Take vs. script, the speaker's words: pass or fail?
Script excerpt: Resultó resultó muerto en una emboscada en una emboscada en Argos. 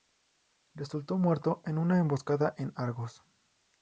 fail